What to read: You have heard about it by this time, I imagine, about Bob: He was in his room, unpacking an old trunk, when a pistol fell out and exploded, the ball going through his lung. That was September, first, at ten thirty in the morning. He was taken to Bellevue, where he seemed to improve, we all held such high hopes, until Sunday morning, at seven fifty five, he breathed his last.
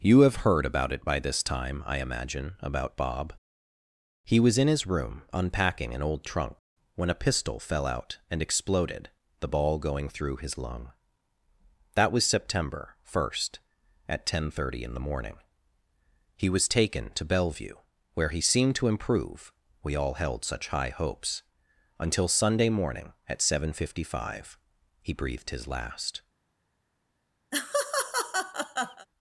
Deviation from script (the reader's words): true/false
false